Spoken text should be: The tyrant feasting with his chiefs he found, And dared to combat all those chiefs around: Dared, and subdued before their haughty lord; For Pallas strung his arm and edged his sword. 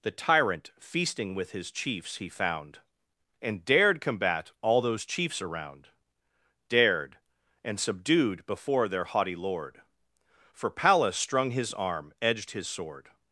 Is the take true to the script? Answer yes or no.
no